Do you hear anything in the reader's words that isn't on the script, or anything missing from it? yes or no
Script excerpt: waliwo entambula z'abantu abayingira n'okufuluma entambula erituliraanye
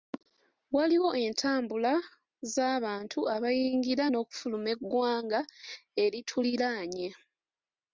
yes